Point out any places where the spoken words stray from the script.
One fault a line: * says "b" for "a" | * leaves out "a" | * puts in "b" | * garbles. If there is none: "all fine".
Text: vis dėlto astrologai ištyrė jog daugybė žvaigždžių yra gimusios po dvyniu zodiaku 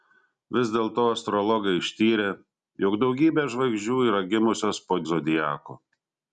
* leaves out "dvyniu"